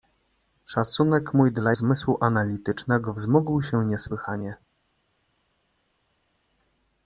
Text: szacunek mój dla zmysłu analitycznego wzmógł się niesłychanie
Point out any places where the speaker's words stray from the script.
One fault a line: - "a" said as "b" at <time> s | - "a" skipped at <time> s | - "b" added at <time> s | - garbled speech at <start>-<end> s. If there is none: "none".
none